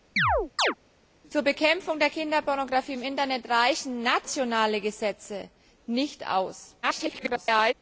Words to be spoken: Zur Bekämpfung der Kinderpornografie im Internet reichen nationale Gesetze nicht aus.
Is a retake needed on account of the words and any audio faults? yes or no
yes